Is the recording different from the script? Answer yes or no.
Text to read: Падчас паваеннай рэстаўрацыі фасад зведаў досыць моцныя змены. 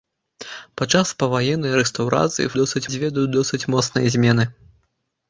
yes